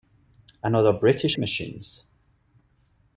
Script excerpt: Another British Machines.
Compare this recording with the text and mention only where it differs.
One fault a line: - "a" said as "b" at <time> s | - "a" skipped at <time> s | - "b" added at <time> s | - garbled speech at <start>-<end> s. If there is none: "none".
none